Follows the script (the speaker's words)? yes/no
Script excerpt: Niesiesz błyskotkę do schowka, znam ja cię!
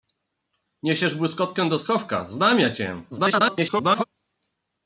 no